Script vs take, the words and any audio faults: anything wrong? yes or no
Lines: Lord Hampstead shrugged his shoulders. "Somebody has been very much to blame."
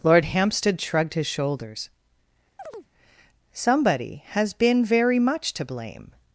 yes